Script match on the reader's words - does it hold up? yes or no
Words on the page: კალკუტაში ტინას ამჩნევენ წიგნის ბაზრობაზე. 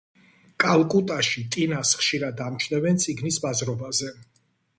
no